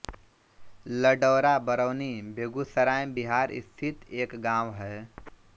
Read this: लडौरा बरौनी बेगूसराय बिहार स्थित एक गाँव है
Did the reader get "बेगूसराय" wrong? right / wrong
right